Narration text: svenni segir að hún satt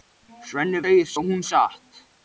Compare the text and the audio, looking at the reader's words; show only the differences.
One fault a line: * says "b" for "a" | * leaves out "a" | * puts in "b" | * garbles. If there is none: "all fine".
all fine